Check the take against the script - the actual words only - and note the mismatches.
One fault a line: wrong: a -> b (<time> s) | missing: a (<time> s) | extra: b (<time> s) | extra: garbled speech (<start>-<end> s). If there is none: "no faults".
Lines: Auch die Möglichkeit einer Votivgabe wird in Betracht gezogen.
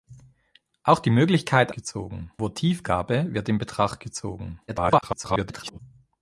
wrong: einer -> gezogen (1.7 s)
extra: garbled speech (4.7-5.8 s)